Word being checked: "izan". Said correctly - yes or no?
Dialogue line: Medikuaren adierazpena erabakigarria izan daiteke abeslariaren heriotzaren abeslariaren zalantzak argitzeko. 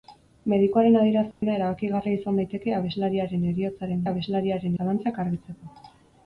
yes